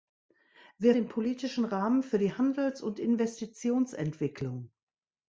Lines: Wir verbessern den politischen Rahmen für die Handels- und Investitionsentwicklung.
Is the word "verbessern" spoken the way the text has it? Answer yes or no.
no